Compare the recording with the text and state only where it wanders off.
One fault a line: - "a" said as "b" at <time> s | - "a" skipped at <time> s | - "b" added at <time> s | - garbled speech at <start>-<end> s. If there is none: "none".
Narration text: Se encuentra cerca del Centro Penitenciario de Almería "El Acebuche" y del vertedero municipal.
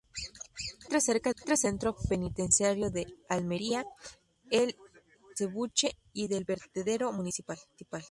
- "del" said as "encuentra" at 1.3 s